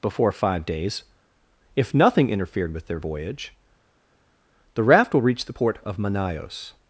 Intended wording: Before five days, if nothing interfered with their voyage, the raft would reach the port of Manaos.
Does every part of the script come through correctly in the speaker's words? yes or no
no